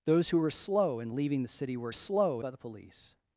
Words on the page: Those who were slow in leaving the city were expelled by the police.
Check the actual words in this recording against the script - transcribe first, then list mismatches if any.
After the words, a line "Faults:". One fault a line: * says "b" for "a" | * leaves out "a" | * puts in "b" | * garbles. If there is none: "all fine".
Those who were slow in leaving the city were slow by the police.
Faults:
* says "slow" for "expelled"